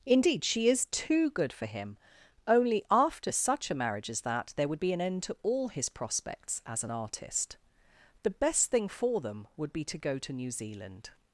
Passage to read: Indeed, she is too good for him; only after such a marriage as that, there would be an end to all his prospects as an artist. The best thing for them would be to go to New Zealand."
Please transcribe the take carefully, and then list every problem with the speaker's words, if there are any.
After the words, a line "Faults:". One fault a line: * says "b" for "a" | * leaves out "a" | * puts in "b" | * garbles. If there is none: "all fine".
Indeed, she is too good for him; only after such a marriage as that, there would be an end to all his prospects as an artist. The best thing for them would be to go to New Zealand."
Faults:
all fine